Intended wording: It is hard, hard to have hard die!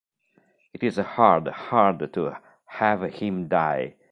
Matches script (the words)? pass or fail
fail